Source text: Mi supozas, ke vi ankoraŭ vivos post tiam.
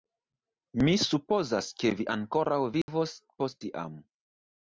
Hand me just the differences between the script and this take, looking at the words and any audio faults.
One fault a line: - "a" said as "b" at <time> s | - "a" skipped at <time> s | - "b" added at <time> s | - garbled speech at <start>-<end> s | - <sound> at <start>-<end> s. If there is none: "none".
- dropout at 2.8-2.9 s